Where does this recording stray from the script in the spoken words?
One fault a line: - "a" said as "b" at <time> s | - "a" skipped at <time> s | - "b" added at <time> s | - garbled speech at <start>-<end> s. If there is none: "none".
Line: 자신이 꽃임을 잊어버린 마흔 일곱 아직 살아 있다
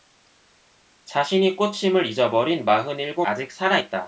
none